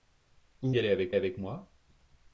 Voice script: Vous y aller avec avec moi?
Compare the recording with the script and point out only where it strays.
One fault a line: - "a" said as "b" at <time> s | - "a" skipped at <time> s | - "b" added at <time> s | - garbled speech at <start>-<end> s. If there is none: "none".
none